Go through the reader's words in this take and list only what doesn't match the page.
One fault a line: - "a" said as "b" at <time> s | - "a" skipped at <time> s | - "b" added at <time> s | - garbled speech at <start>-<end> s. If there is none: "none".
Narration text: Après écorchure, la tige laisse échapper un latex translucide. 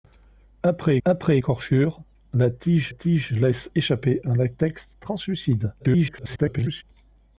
- "après" added at 1.0 s
- "tige" added at 2.9 s
- garbled speech at 5.8-6.8 s